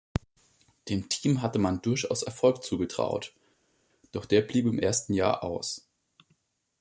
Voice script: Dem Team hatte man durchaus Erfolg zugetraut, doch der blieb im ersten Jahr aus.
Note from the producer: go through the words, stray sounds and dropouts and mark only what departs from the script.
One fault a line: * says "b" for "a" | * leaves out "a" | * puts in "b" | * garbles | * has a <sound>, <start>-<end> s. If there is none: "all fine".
all fine